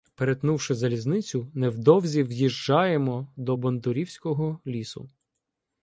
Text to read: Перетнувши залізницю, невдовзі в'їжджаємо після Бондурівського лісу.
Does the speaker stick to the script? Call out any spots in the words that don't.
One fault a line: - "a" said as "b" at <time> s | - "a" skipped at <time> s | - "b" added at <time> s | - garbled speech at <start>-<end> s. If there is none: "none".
- "після" said as "до" at 3.4 s